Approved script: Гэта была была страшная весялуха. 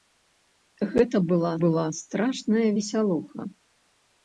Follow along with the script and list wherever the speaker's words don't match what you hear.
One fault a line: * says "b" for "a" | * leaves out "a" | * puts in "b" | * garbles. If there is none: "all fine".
all fine